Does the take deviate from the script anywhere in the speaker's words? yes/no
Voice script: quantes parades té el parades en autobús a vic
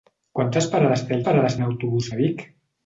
no